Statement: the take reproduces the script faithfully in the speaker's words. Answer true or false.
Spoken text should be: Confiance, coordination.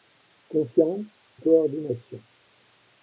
true